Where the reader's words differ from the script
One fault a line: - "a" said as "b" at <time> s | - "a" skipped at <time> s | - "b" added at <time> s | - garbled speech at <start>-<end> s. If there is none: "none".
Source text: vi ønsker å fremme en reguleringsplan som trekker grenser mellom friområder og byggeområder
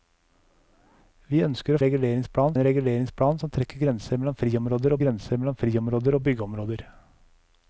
- "fremme" said as "reguleringsplan" at 1.8 s
- "grenser mellom friområder" added at 5.0 s